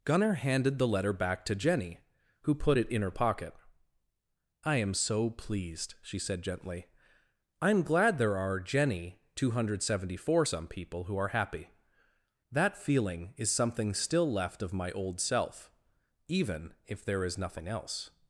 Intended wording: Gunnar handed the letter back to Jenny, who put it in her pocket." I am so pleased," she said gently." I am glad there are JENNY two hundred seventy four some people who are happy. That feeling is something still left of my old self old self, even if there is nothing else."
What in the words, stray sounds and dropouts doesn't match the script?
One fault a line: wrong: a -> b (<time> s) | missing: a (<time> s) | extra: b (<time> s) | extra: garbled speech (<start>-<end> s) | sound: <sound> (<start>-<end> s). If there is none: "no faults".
missing: old self (15.7 s)